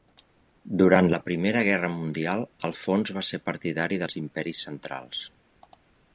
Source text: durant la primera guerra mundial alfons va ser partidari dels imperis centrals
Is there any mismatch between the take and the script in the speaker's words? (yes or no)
no